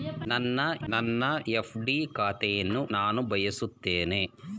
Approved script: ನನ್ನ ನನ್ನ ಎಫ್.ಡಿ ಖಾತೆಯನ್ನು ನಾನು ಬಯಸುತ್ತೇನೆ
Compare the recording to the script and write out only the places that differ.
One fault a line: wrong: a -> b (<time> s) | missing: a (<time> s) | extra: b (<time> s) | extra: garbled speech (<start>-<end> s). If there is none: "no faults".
no faults